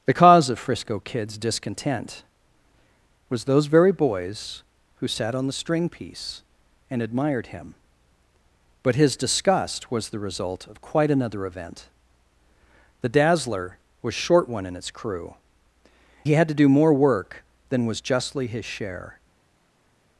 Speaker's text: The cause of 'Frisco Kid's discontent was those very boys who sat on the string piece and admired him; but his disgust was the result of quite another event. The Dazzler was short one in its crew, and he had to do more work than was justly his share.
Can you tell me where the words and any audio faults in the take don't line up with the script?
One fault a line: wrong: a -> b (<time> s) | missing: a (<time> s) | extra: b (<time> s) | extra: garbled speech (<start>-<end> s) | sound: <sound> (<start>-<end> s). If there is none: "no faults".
missing: and (15.4 s)